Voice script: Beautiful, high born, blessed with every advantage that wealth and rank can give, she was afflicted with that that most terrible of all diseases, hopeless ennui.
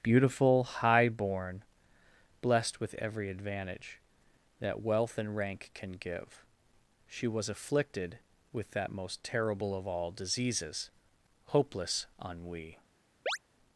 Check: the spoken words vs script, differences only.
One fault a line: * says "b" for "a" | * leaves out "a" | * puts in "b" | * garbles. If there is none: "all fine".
* leaves out "that"